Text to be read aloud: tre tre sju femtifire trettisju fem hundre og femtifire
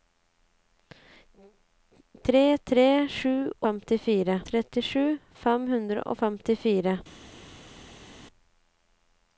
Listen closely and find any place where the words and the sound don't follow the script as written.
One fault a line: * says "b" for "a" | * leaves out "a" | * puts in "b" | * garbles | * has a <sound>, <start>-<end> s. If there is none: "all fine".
all fine